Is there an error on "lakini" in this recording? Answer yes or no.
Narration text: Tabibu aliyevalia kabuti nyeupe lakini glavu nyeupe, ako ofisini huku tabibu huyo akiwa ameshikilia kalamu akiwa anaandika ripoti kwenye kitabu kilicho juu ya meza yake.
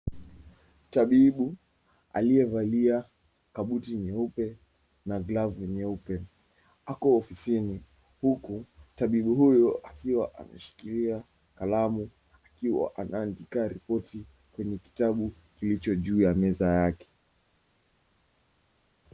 yes